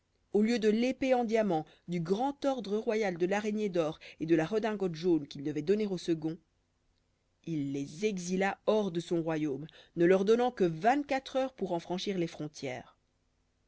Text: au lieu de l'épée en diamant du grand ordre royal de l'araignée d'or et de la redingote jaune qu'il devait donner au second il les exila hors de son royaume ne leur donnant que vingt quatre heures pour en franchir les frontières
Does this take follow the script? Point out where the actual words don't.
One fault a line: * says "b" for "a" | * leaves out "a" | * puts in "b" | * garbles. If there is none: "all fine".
all fine